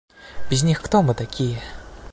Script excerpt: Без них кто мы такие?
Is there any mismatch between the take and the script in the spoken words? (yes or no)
no